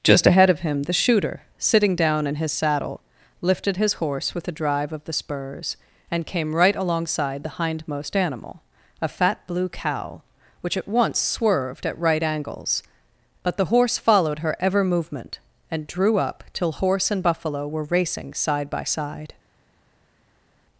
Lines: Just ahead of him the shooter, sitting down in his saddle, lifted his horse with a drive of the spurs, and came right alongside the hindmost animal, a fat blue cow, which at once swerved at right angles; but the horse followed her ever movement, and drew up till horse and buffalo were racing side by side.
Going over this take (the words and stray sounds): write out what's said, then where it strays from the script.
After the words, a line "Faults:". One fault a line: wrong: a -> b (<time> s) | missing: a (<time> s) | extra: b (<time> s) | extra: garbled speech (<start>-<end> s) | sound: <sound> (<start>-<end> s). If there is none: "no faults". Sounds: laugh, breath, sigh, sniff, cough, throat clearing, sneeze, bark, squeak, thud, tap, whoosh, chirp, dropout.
Just ahead of him the shooter, sitting down in his saddle, lifted his horse with a drive of the spurs, and came right alongside the hindmost animal, a fat blue cow, which at once swerved at right angles; but the horse followed her ever movement, and drew up till horse and buffalo were racing side by side.
Faults:
no faults